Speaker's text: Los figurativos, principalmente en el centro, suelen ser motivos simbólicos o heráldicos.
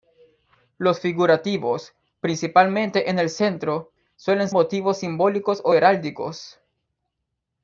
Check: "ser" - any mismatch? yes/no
yes